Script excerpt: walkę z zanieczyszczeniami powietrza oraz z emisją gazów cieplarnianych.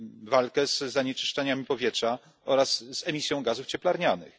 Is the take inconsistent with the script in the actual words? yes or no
no